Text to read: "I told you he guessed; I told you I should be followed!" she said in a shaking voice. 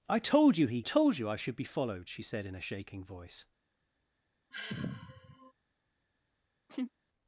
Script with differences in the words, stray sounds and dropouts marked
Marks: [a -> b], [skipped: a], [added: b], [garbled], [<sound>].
"I told you he [skipped: guessed; I] told you I should be followed!" she said in a shaking voice. [sigh] [laugh]